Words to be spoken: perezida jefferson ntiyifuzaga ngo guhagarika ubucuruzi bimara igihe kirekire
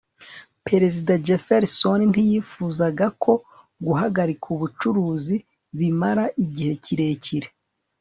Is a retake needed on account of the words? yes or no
yes